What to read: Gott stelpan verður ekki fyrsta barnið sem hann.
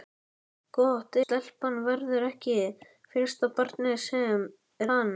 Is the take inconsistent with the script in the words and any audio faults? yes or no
no